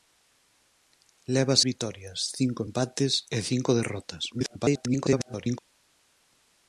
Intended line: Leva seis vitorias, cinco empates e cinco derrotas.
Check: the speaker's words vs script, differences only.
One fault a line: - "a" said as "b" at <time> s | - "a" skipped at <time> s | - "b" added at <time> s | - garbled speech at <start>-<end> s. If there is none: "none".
- "seis" skipped at 1.6 s
- garbled speech at 4.3-5.6 s